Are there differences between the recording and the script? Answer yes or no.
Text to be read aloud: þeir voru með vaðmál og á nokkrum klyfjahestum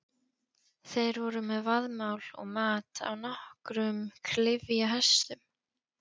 yes